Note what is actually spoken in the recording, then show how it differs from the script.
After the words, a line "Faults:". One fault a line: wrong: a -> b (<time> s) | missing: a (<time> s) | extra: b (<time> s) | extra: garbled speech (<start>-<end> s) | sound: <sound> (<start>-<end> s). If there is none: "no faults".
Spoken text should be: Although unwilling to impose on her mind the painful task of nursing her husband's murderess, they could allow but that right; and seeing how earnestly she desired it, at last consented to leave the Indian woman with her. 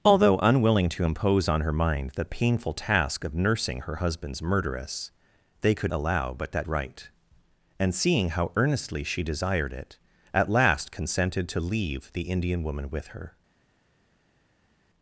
Although unwilling to impose on her mind the painful task of nursing her husband's murderess, they could allow but that right; and seeing how earnestly she desired it, at last consented to leave the Indian woman with her.
Faults:
no faults